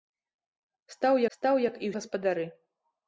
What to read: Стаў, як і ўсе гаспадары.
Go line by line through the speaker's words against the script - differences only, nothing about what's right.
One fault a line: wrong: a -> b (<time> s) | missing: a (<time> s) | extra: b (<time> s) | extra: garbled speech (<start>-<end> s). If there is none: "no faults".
extra: стаў (1.4 s)
missing: ўсе (1.9 s)